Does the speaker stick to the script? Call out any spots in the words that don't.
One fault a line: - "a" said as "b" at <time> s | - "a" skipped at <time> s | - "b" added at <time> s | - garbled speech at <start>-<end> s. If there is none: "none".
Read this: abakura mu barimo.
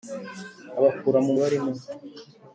none